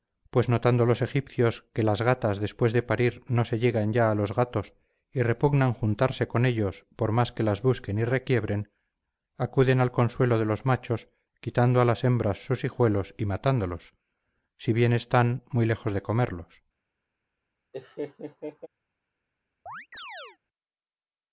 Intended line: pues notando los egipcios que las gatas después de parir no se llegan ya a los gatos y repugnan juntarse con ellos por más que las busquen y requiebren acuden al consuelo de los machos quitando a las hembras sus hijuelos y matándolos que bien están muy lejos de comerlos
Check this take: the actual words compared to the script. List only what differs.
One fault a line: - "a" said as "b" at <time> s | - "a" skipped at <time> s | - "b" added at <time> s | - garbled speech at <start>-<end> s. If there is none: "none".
- "que" said as "si" at 14.6 s